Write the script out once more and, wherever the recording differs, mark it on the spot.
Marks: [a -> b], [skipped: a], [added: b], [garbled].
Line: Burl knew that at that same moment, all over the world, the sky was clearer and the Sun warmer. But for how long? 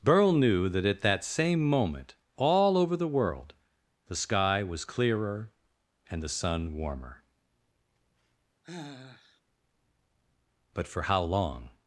Burl knew that at that same moment, all over the world, the sky was clearer and the Sun warmer. But for how long?